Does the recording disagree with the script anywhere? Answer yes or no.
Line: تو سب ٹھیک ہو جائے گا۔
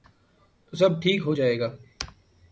no